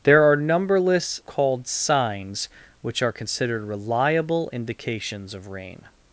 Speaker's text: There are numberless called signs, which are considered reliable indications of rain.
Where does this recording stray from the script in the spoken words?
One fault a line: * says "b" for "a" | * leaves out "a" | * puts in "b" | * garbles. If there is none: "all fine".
all fine